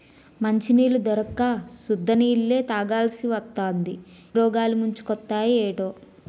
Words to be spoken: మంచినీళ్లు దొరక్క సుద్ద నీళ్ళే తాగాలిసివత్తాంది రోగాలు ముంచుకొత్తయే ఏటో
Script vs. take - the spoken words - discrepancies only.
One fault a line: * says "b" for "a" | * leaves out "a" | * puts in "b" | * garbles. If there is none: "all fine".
all fine